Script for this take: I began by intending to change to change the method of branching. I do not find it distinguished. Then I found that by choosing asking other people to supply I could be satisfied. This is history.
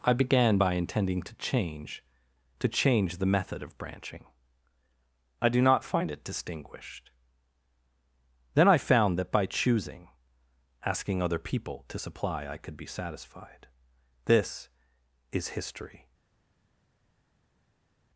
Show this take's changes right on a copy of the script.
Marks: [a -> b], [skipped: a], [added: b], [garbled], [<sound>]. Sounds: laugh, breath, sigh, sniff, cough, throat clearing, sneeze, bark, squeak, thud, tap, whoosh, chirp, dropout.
I began by intending to change to change the method of branching. I do not find it distinguished. Then I found that by choosing asking other people to supply I could be satisfied. This is history.